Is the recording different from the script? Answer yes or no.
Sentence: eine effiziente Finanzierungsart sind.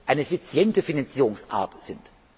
no